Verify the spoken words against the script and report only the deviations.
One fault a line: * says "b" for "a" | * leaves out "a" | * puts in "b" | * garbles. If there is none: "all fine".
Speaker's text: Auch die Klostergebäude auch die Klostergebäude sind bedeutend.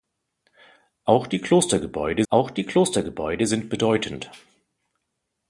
all fine